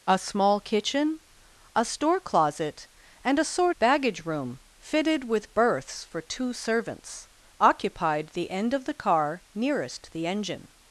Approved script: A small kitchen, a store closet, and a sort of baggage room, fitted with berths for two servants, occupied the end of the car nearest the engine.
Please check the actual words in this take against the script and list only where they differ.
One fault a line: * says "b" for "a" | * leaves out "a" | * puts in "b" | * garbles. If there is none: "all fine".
* leaves out "of"